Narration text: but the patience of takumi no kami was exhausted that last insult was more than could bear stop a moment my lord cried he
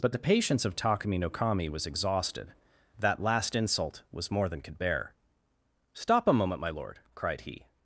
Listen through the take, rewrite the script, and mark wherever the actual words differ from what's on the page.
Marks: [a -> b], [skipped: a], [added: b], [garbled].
but the patience of takumi no kami was exhausted that last insult was more than could bear stop a moment my lord cried he